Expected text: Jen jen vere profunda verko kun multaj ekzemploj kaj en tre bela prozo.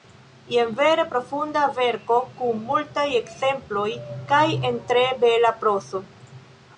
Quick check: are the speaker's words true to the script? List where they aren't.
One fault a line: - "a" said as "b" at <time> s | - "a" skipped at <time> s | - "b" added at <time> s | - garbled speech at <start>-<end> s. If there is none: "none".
- "jen" skipped at 0.7 s